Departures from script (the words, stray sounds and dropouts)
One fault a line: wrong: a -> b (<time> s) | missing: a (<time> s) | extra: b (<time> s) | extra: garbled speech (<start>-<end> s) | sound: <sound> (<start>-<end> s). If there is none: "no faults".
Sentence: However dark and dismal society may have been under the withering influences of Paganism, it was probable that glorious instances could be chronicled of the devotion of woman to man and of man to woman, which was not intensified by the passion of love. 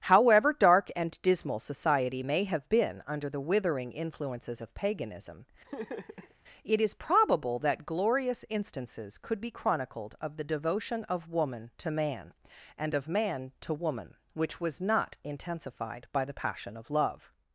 sound: laugh (5.6-6.3 s)
wrong: was -> is (6.8 s)